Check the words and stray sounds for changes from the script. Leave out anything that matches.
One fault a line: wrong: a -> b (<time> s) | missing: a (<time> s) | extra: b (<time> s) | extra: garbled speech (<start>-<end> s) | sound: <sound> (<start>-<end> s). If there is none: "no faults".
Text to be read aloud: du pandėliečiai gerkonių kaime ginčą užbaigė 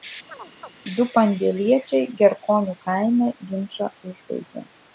sound: chirp (0.3-0.7 s)